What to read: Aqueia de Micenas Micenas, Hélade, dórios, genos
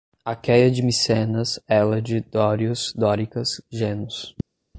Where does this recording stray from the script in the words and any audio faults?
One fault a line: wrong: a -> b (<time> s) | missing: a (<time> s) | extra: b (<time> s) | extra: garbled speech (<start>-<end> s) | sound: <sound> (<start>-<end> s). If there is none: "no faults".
missing: Micenas (1.6 s)
extra: dóricas (3.0 s)